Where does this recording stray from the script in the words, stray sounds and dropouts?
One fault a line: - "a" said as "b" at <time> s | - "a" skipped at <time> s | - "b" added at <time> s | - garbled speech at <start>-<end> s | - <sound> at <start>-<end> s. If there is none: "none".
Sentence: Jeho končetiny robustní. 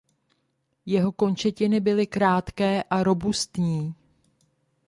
- "byly krátké a" added at 1.8 s